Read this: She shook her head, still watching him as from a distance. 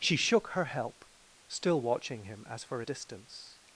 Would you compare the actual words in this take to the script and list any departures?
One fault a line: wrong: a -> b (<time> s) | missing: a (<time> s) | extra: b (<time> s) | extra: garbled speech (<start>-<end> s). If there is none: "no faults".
wrong: head -> help (0.7 s)
wrong: from -> for (2.6 s)